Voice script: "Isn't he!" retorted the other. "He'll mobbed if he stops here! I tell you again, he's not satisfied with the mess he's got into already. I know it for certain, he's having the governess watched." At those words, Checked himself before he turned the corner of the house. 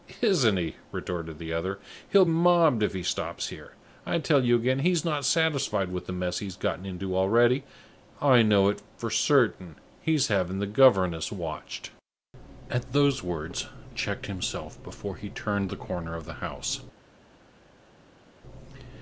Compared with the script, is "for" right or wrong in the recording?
right